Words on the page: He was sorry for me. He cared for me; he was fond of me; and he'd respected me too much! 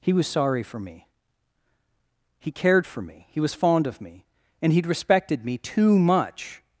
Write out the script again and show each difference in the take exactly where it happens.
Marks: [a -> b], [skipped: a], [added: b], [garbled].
He was sorry for me. He cared for me; he was fond of me; and he'd respected me too much!